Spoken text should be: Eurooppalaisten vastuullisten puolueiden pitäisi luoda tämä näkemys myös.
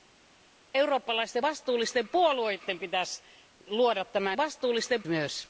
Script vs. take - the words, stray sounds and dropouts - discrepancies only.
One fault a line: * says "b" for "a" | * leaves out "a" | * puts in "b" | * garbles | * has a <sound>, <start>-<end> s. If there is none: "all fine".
* says "vastuullisten" for "näkemys"